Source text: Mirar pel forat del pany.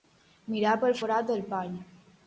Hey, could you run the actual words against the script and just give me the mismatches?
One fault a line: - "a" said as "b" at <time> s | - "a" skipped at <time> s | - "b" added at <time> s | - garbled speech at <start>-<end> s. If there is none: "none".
none